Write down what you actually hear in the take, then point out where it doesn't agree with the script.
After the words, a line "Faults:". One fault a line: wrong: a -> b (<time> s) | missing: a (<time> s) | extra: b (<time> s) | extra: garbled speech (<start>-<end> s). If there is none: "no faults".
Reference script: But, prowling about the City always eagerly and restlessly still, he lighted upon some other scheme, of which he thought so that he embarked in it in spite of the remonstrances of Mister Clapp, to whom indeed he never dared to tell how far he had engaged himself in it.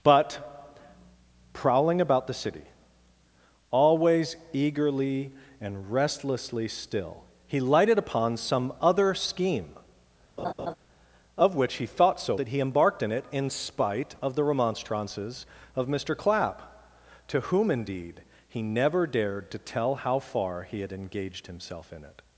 But, prowling about the City always eagerly and restlessly still, he lighted upon some other scheme, of which he thought so that he embarked in it in spite of the remonstrances of Mister Clapp, to whom indeed he never dared to tell how far he had engaged himself in it.
Faults:
no faults